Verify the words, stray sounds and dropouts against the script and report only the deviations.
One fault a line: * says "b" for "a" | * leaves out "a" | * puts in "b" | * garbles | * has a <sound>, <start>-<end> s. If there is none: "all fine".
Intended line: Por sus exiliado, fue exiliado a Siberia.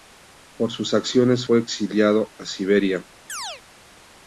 * says "acciones" for "exiliado"
* has a chirp, 3.3-3.6 s